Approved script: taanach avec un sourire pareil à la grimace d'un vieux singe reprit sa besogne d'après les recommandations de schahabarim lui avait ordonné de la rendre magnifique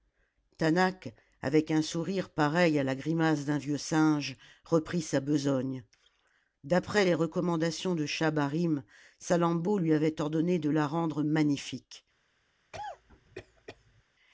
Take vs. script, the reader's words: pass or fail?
fail